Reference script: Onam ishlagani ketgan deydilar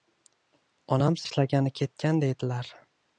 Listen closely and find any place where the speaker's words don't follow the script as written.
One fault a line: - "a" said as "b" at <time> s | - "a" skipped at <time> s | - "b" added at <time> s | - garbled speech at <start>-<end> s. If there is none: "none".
none